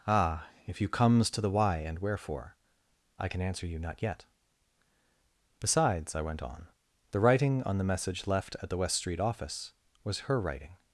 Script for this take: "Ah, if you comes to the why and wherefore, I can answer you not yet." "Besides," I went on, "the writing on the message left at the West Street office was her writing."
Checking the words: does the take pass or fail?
pass